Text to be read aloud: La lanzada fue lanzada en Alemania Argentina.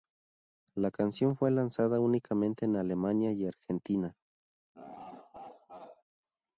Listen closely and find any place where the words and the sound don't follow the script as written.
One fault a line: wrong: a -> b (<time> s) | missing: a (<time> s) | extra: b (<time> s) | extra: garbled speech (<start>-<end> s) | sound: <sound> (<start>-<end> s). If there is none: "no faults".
wrong: lanzada -> canción (0.9 s)
extra: únicamente (2.0 s)
extra: y (3.3 s)
sound: laugh (4.7-6.0 s)